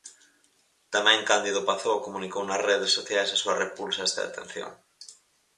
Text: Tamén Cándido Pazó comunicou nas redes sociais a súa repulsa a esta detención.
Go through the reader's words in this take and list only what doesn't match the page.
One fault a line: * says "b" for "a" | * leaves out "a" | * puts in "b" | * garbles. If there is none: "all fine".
all fine